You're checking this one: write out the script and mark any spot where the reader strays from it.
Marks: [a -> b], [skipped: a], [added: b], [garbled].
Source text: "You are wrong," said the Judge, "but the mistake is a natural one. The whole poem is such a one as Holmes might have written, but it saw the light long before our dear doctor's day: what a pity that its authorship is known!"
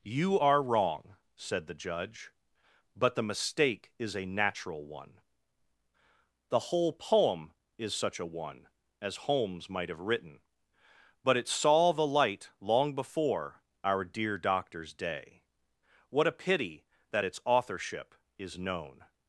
"You are wrong," said the Judge, "but the mistake is a natural one. The whole poem is such a one as Holmes might have written, but it saw the light long before our dear doctor's day: what a pity that its authorship is known!"